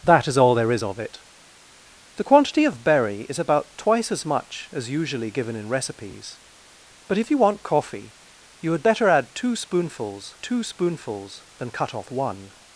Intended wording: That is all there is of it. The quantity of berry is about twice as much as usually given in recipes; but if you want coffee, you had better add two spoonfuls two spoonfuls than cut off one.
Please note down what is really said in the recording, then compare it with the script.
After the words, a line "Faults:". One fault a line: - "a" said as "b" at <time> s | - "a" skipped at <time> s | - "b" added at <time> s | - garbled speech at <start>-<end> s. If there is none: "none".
That is all there is of it. The quantity of berry is about twice as much as usually given in recipes; but if you want coffee, you had better add two spoonfuls two spoonfuls than cut off one.
Faults:
none